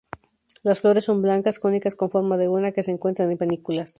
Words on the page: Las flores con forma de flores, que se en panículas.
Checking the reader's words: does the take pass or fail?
fail